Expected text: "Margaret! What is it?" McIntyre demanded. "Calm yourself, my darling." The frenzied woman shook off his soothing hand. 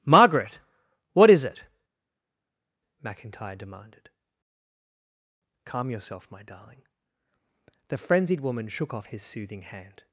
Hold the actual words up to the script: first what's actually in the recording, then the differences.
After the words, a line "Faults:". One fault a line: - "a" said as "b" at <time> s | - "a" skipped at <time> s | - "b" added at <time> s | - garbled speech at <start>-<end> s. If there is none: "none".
"Margaret! What is it?" McIntyre demanded. "Calm yourself, my darling." The frenzied woman shook off his soothing hand.
Faults:
none